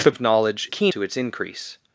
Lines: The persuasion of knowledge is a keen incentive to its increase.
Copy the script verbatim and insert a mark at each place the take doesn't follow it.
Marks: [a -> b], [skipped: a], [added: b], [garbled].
The [skipped: persuasion] of knowledge [skipped: is] a keen [skipped: incentive] to its increase.